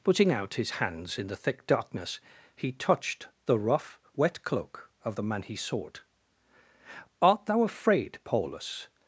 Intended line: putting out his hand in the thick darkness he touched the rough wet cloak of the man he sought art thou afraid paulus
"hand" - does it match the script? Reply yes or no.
no